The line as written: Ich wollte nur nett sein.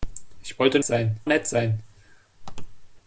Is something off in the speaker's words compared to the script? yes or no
yes